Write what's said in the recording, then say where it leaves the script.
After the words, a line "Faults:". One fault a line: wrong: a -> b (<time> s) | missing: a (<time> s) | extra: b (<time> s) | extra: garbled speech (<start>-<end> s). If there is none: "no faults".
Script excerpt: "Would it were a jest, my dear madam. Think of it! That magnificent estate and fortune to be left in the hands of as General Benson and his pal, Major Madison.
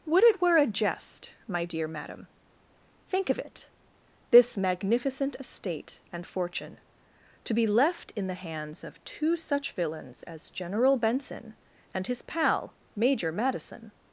"Would it were a jest, my dear madam. Think of it! This magnificent estate and fortune to be left in the hands of two such villains as General Benson and his pal, Major Madison.
Faults:
wrong: That -> This (4.3 s)
extra: two such villains (9.0 s)